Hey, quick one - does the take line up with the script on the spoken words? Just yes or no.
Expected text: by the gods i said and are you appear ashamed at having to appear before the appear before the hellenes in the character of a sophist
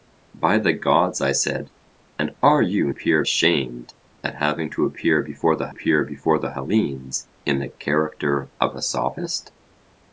yes